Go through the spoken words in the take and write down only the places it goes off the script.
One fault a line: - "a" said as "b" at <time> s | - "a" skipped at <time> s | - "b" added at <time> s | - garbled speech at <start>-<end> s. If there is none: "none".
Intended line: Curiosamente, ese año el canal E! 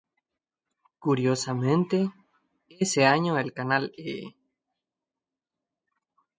none